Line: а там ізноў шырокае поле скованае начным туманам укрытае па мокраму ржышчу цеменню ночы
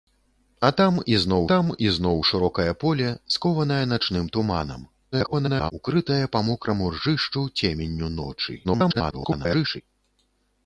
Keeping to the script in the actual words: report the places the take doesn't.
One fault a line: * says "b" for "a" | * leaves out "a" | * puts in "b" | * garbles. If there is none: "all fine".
* puts in "там ізноў"
* garbles
* garbles